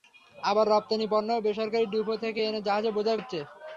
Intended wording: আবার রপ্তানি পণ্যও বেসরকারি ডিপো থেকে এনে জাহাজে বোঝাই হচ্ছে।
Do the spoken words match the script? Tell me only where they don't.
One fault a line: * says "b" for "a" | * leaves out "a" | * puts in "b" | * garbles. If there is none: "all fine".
all fine